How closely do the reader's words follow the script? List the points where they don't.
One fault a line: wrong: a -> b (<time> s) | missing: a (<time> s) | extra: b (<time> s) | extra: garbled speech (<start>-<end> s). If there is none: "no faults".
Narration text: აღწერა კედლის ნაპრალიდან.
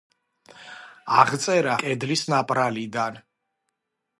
no faults